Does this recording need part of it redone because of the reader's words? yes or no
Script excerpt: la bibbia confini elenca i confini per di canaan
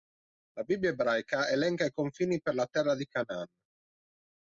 yes